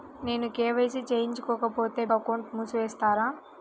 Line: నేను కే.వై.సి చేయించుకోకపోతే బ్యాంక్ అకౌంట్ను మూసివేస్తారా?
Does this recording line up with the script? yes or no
no